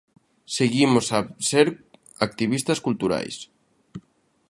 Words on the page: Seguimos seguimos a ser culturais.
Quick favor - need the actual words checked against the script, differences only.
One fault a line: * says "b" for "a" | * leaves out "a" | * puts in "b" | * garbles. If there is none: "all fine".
* leaves out "seguimos"
* puts in "activistas"